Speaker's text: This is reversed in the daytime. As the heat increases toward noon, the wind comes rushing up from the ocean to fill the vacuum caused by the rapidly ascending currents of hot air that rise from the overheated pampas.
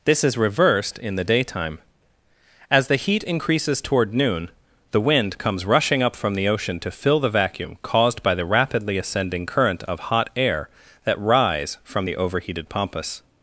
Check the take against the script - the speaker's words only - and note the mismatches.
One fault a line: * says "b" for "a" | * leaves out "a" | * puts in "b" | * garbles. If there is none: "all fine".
* says "current" for "currents"